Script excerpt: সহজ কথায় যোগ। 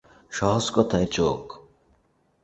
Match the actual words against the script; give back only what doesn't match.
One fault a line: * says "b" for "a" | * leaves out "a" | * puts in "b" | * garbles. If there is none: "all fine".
all fine